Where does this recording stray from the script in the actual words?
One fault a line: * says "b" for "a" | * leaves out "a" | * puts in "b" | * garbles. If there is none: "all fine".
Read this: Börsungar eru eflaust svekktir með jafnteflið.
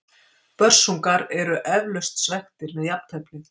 all fine